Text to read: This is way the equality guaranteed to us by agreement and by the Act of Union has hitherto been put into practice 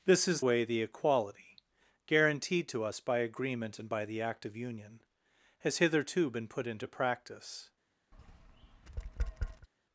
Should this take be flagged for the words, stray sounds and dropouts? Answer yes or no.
yes